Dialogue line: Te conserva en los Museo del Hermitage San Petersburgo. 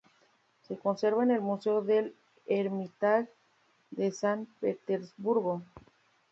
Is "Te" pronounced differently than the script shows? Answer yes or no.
yes